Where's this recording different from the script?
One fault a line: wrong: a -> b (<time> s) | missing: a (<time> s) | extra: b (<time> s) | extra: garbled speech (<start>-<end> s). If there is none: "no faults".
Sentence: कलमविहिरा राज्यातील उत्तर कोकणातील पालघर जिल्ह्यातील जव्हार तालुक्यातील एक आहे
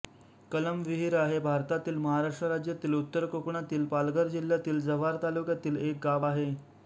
extra: हे भारतातील महाराष्ट्र (1.2 s)
extra: गाव (6.0 s)